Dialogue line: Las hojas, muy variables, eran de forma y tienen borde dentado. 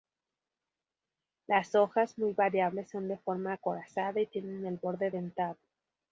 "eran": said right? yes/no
no